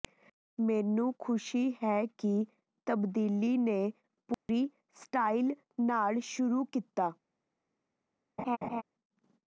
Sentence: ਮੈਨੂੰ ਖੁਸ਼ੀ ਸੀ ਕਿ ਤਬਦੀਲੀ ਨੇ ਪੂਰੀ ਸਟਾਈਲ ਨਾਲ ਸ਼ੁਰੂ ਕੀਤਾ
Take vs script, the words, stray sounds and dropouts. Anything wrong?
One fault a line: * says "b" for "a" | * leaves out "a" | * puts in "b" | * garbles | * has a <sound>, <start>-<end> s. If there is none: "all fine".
* says "ਹੈ" for "ਸੀ"
* has a dropout, 4.3-4.5 s
* has a laugh, 8.4-8.8 s